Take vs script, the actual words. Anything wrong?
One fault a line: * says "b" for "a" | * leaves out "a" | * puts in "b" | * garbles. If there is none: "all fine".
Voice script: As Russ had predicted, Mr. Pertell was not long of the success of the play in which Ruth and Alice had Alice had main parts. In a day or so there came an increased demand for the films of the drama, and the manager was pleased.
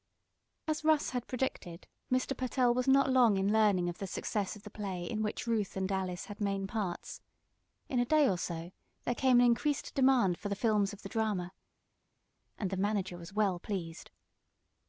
* puts in "in learning"
* leaves out "Alice had"
* puts in "well"